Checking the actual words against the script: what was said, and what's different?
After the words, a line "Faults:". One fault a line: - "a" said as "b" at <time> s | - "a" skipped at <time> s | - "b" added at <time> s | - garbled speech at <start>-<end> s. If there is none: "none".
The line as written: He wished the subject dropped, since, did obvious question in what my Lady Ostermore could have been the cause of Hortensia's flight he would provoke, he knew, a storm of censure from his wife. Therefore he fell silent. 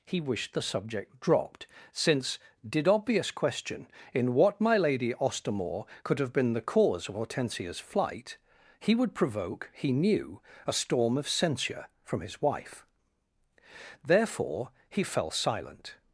He wished the subject dropped, since, did obvious question in what my Lady Ostermore could have been the cause of Hortensia's flight he would provoke, he knew, a storm of censure from his wife. Therefore he fell silent.
Faults:
none